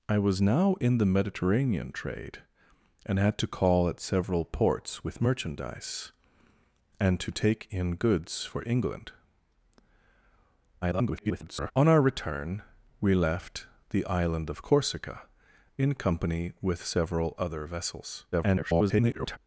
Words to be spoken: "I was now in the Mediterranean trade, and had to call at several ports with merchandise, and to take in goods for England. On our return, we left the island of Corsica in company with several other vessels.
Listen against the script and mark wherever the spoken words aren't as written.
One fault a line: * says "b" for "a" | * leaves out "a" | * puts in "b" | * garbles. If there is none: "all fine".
* garbles
* garbles